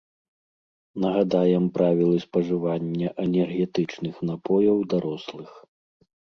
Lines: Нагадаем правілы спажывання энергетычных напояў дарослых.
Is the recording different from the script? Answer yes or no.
no